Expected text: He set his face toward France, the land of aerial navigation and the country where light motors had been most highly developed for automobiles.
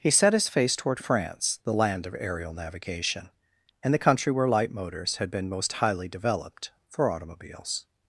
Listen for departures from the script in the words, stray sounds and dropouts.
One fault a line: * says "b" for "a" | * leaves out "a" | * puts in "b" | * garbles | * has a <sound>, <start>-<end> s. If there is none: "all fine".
all fine